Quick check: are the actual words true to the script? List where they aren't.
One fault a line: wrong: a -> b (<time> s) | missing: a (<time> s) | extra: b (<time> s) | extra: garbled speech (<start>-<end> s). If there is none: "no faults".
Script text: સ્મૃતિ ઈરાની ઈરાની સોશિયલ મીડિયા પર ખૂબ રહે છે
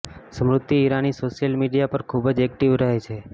missing: ઈરાની (1.1 s)
extra: જ એક્ટિવ (2.3 s)